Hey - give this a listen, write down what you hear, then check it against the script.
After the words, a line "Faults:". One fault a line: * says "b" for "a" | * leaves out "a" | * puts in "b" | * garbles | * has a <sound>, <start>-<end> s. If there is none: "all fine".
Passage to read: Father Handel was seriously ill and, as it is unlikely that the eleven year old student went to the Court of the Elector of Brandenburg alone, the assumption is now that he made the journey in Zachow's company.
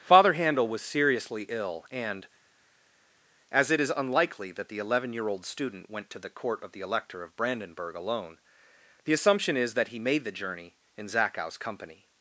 Father Handel was seriously ill and, as it is unlikely that the eleven year old student went to the Court of the Elector of Brandenburg alone, the assumption is that he made the journey in Zachow's company.
Faults:
* leaves out "now"